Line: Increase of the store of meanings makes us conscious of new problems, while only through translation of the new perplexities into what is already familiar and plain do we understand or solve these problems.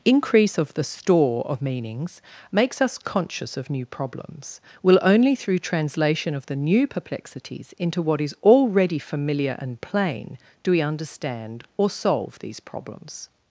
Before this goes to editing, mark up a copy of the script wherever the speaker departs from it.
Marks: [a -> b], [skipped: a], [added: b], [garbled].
Increase of the store of meanings makes us conscious of new problems, [while -> will] only through translation of the new perplexities into what is already familiar and plain do we understand or solve these problems.